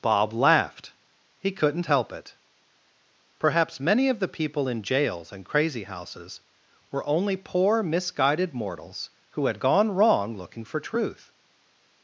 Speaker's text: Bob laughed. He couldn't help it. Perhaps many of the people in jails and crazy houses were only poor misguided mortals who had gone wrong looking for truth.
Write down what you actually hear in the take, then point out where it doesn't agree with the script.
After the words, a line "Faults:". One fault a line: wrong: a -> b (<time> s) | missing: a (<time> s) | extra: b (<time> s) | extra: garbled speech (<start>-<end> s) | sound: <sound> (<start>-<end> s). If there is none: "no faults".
Bob laughed. He couldn't help it. Perhaps many of the people in jails and crazy houses were only poor misguided mortals who had gone wrong looking for truth.
Faults:
no faults